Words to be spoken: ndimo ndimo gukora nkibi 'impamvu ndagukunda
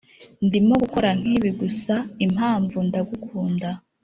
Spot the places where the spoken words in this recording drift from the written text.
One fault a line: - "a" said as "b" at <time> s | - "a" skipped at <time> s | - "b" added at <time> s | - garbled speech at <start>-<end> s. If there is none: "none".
- "ndimo" skipped at 0.7 s
- "gusa" added at 1.6 s